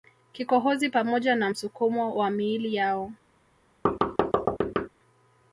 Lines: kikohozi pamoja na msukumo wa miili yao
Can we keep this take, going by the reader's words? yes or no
yes